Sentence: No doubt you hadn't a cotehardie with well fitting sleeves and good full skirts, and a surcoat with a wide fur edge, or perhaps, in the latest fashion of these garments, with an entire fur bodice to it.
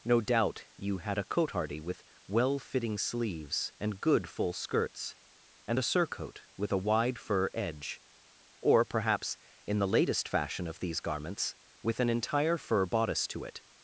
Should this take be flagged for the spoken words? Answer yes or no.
yes